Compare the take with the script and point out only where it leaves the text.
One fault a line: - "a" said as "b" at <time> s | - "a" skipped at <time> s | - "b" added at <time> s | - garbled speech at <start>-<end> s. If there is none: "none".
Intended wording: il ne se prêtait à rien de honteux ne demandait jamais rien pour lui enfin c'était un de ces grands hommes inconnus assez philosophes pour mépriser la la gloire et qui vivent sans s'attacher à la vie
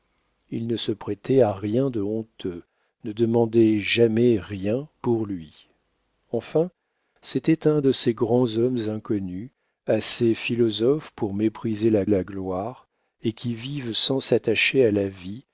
none